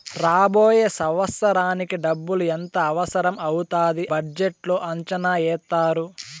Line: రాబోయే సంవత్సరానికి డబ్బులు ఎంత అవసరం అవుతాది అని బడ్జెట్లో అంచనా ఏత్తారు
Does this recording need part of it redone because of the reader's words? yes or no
yes